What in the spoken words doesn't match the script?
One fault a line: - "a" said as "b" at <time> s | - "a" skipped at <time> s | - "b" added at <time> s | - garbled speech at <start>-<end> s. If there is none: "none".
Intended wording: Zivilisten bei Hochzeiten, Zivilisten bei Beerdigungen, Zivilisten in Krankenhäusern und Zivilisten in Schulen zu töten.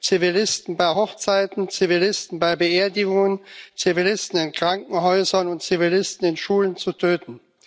none